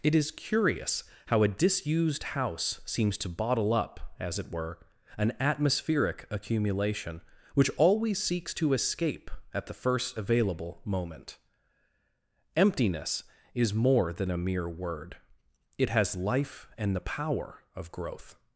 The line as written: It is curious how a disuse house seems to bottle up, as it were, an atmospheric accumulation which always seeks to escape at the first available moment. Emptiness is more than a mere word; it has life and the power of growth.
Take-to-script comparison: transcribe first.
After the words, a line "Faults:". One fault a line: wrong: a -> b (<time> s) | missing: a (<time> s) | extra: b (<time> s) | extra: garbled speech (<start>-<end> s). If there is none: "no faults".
It is curious how a disused house seems to bottle up, as it were, an atmospheric accumulation which always seeks to escape at the first available moment. Emptiness is more than a mere word; it has life and the power of growth.
Faults:
wrong: disuse -> disused (1.5 s)